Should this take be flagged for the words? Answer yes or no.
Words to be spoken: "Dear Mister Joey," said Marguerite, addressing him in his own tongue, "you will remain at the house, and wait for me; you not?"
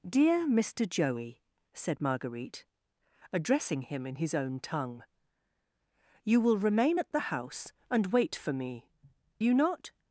no